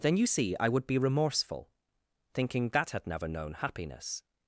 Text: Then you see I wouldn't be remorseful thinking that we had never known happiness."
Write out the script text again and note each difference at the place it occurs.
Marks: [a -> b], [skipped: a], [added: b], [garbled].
Then you see I [wouldn't -> would] be remorseful thinking that [skipped: we] had never known happiness."